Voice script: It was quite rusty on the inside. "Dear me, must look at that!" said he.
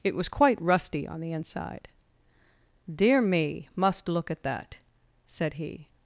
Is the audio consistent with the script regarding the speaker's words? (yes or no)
yes